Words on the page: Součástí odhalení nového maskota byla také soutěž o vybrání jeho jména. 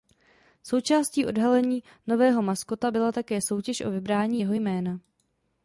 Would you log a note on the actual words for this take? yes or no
no